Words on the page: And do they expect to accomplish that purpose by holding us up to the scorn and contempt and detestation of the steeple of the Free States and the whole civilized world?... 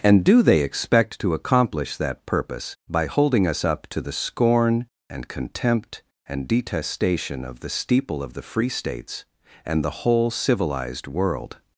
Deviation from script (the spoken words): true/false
false